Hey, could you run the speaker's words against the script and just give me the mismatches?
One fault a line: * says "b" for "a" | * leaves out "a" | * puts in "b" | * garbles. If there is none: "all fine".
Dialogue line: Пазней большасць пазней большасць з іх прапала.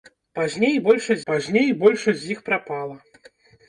all fine